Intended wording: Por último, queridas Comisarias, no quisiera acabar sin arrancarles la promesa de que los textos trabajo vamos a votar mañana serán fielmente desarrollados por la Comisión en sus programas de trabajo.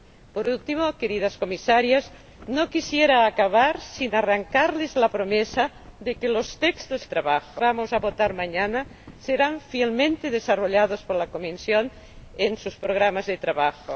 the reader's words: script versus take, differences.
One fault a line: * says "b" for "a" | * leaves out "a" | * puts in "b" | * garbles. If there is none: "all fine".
all fine